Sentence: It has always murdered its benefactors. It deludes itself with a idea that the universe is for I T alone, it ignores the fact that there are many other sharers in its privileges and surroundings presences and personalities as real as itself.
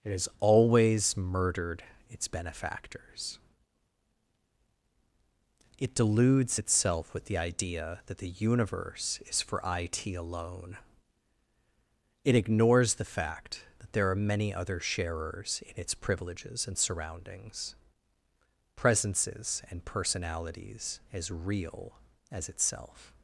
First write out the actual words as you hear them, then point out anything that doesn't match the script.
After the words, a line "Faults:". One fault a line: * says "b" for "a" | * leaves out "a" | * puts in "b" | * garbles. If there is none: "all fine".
It has always murdered its benefactors. It deludes itself with the idea that the universe is for I T alone, it ignores the fact that there are many other sharers in its privileges and surroundings presences and personalities as real as itself.
Faults:
* says "the" for "a"